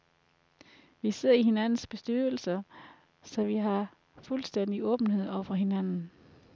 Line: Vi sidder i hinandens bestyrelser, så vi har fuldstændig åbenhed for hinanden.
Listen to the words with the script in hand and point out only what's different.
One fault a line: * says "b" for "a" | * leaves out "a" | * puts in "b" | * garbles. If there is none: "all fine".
* puts in "over"